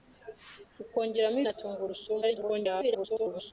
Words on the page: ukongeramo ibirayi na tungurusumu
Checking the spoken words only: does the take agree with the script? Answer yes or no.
no